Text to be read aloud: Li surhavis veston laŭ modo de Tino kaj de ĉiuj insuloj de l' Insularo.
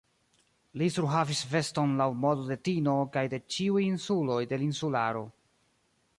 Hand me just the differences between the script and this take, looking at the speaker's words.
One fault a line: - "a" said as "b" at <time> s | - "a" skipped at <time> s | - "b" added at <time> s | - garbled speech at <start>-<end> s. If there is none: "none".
none